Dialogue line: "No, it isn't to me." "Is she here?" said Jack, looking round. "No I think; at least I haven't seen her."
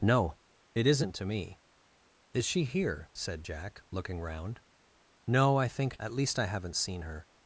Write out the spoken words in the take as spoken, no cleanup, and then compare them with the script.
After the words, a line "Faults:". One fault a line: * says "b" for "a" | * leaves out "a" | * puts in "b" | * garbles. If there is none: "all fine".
"No, it isn't to me." "Is she here?" said Jack, looking round. "No I think; at least I haven't seen her."
Faults:
all fine